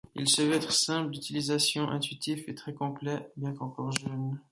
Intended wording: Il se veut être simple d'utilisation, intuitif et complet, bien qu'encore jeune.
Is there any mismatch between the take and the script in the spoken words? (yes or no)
yes